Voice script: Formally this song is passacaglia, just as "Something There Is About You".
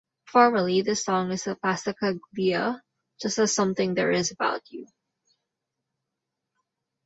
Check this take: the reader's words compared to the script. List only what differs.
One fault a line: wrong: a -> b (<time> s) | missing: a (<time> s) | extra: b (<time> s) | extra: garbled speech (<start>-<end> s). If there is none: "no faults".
extra: a (1.4 s)